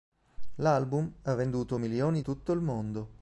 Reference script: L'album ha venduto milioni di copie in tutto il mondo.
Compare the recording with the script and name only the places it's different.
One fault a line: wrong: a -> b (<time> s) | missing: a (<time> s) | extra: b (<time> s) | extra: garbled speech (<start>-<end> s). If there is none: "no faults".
missing: di copie in (2.2 s)